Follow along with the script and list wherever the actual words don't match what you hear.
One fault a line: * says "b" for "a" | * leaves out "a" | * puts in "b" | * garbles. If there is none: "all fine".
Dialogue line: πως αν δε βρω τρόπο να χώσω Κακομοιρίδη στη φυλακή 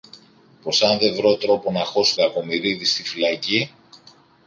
all fine